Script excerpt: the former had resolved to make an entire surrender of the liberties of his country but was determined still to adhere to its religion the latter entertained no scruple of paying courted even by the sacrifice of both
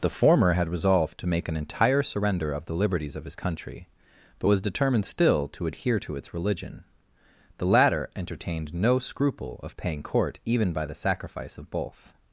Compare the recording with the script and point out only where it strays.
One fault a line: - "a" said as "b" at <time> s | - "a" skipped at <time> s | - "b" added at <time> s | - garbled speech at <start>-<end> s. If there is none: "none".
- "courted" said as "court" at 10.0 s